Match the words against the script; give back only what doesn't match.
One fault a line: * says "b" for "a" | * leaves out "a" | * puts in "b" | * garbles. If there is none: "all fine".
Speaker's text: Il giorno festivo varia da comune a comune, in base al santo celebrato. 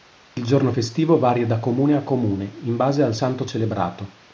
all fine